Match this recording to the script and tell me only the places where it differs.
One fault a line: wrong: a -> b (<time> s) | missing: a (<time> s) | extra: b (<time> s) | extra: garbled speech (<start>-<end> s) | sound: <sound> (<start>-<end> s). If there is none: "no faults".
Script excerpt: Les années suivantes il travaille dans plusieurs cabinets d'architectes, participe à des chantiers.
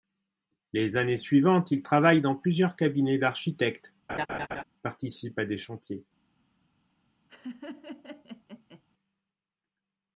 sound: laugh (4.1-4.6 s)
sound: laugh (7.3-8.8 s)